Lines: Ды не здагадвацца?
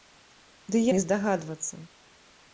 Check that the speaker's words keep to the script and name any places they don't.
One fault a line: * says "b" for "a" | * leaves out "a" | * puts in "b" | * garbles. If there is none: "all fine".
all fine